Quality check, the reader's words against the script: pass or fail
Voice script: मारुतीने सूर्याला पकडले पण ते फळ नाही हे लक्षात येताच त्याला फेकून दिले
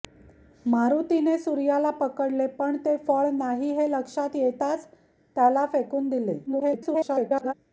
fail